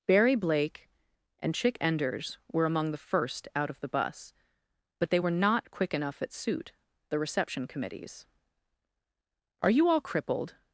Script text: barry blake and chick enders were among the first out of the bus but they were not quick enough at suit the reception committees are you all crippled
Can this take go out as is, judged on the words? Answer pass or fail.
pass